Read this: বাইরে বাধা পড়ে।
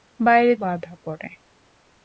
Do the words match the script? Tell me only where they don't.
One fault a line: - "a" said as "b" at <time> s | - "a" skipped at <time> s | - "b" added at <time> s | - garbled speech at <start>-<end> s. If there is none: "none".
none